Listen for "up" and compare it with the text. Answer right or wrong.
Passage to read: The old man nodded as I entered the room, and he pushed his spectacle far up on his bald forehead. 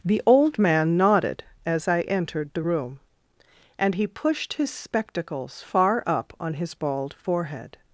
right